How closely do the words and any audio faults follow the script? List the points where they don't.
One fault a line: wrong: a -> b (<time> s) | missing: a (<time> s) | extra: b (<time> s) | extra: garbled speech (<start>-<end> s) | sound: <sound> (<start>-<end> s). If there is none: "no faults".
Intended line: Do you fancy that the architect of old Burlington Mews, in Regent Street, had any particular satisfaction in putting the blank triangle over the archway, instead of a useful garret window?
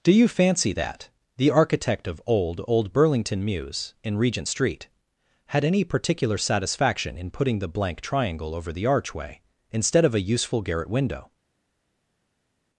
extra: old (2.7 s)